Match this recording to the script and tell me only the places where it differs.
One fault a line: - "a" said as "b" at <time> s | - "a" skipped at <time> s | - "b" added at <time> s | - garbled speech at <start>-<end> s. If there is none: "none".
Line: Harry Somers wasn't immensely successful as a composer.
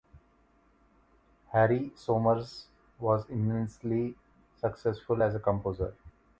- "wasn't" said as "was" at 3.0 s